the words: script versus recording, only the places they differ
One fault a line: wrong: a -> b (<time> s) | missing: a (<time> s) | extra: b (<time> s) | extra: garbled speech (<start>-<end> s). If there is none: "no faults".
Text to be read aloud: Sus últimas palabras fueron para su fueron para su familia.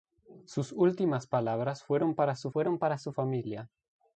no faults